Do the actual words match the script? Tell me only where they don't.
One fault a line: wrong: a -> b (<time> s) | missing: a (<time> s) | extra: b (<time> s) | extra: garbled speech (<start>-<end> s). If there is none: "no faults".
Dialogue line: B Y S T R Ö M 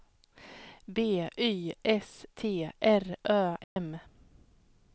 no faults